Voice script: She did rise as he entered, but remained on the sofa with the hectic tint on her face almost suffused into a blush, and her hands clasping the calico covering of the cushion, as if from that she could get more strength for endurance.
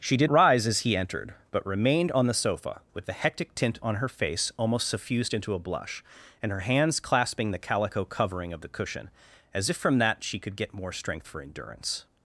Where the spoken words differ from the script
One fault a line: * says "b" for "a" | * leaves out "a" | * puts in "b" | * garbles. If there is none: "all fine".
all fine